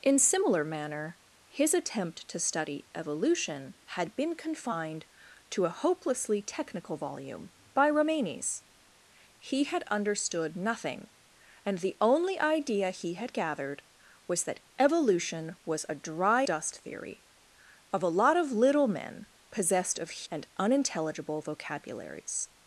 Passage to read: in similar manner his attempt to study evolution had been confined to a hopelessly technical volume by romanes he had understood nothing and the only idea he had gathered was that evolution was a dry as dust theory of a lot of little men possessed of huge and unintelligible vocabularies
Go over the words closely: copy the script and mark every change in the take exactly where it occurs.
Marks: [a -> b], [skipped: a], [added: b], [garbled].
in similar manner his attempt to study evolution had been confined to a hopelessly technical volume by romanes he had understood nothing and the only idea he had gathered was that evolution was a dry [skipped: as] dust theory of a lot of little men possessed of [skipped: huge] and unintelligible vocabularies